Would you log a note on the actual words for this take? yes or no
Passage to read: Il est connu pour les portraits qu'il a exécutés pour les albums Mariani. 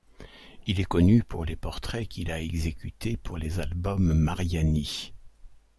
no